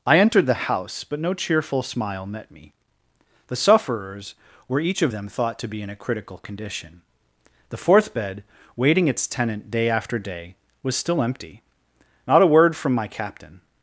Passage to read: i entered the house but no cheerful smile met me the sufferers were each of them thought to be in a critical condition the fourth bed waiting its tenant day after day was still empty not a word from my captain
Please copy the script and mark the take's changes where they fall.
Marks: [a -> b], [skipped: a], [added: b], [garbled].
i entered the house but no cheerful smile met me the sufferers were each of them thought to be in a critical condition the fourth bed waiting its tenant day after day was still empty not a word from my captain